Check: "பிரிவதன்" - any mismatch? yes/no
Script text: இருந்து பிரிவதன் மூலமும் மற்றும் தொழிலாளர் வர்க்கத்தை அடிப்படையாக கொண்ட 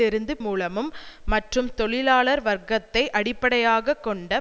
yes